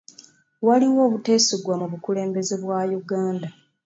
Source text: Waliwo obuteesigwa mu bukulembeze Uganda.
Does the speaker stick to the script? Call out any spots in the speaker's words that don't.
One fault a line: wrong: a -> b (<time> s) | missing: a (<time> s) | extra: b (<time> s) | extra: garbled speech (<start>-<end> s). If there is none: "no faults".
extra: bwa (2.6 s)